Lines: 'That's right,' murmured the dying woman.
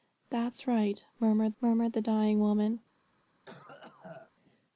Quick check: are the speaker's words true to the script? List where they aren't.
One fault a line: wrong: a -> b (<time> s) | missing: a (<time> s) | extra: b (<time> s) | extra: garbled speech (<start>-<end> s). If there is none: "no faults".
extra: murmured (1.6 s)